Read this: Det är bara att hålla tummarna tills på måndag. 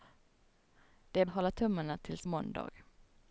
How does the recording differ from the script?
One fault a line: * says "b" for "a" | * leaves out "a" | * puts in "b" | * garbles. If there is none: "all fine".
* leaves out "bara"
* leaves out "på"